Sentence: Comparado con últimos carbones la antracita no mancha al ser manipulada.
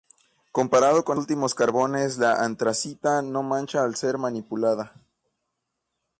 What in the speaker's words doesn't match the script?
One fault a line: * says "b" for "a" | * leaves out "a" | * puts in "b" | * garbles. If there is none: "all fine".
all fine